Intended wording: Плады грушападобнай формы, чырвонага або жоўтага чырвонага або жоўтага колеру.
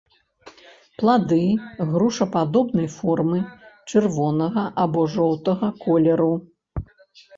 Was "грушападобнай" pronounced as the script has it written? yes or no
yes